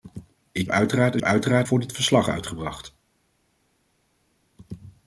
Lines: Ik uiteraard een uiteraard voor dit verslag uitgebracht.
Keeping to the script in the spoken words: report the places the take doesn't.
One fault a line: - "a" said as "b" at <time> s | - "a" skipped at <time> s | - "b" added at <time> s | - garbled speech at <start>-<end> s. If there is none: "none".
none